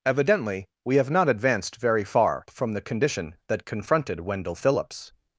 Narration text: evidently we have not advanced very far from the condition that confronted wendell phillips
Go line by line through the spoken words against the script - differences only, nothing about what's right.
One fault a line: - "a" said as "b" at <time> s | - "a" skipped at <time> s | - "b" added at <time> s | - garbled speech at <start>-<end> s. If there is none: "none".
none